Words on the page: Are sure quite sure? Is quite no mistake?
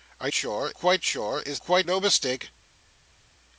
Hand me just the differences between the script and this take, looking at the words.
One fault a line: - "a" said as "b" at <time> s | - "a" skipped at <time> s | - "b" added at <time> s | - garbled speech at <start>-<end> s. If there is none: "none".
none